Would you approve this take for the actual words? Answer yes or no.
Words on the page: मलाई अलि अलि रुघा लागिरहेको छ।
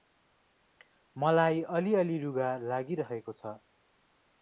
yes